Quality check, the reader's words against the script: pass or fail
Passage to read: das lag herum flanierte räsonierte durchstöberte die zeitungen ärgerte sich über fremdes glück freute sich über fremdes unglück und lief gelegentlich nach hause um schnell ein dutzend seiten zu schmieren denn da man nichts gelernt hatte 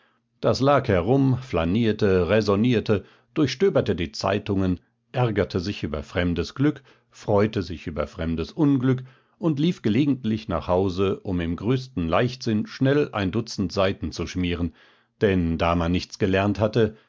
fail